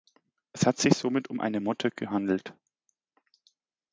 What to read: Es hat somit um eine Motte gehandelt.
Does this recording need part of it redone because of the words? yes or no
yes